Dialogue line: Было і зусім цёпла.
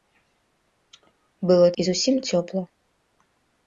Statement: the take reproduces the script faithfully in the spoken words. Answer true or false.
true